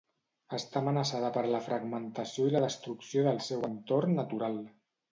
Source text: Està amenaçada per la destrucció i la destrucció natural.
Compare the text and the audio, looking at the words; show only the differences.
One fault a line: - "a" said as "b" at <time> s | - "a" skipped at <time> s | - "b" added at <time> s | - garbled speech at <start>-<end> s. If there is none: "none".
- "destrucció" said as "fragmentació" at 1.7 s
- "del seu entorn" added at 3.3 s